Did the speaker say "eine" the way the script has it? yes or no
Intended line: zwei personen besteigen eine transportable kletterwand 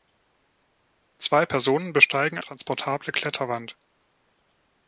no